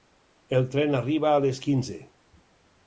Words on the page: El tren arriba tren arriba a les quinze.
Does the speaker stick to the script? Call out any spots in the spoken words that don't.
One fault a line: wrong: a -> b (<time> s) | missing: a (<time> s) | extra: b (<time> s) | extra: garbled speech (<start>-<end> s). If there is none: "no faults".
missing: tren arriba (1.4 s)